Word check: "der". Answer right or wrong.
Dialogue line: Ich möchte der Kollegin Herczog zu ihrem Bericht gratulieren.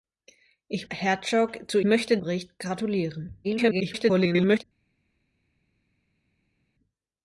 wrong